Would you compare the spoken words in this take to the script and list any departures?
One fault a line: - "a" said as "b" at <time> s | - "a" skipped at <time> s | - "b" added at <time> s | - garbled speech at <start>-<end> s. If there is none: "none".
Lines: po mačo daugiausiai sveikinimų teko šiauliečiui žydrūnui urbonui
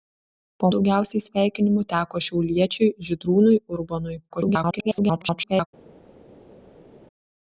- "mačo" skipped at 0.7 s
- garbled speech at 4.3-5.7 s